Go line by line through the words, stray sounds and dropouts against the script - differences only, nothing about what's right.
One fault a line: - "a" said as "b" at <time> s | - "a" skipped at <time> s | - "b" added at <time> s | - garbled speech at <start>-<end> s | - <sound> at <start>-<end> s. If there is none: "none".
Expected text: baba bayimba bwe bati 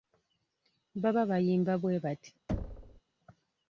- thud at 2.5-3.0 s